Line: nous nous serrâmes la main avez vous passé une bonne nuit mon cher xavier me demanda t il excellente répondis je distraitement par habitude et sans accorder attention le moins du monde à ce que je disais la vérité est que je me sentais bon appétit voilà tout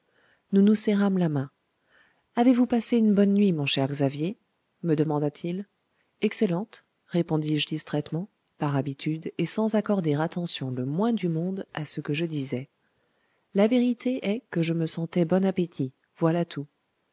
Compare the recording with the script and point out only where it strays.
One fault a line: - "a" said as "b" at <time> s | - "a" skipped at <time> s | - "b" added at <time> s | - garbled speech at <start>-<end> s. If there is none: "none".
none